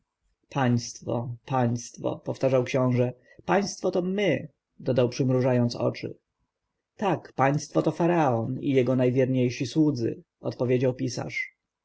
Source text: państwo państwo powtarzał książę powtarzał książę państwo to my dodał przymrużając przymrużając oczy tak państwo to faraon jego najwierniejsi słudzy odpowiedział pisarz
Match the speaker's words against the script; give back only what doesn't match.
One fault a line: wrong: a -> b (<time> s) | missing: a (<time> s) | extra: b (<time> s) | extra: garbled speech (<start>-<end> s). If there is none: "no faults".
missing: powtarzał książę (3.1 s)
missing: przymrużając (5.7 s)
extra: i (8.6 s)